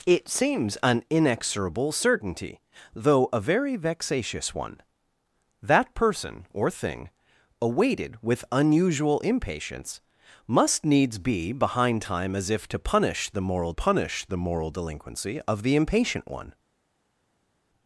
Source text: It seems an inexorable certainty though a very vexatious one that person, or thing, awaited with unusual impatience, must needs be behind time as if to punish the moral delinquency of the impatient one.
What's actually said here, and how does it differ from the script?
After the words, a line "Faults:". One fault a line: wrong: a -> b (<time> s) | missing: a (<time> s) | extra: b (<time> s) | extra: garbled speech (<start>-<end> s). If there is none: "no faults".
It seems an inexorable certainty though a very vexatious one that person, or thing, awaited with unusual impatience, must needs be behind time as if to punish the moral punish the moral delinquency of the impatient one.
Faults:
extra: punish the moral (13.7 s)